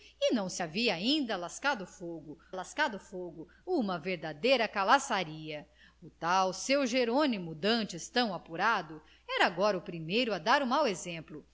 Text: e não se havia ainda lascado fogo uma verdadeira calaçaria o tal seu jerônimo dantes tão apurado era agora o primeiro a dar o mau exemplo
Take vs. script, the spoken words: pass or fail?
fail